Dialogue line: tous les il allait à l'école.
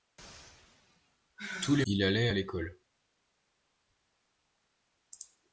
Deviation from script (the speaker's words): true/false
false